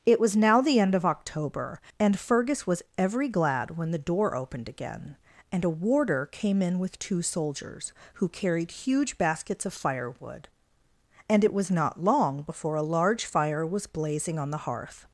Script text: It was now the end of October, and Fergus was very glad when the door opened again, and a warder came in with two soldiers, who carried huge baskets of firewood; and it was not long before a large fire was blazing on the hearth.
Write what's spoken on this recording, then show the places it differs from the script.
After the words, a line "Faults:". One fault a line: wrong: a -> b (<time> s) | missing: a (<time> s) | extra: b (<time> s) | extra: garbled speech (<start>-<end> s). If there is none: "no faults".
It was now the end of October, and Fergus was every glad when the door opened again, and a warder came in with two soldiers, who carried huge baskets of firewood; and it was not long before a large fire was blazing on the hearth.
Faults:
wrong: very -> every (3.0 s)